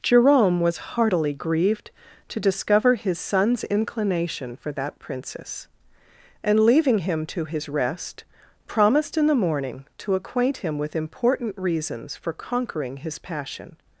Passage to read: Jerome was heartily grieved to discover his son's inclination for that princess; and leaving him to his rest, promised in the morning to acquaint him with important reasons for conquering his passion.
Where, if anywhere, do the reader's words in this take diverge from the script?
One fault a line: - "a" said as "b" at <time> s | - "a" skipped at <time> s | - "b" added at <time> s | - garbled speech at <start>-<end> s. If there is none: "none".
none